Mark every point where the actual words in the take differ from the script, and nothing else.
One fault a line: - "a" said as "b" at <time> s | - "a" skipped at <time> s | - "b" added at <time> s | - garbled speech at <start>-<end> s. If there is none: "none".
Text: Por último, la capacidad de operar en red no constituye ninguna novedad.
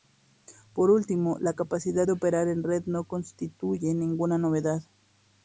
none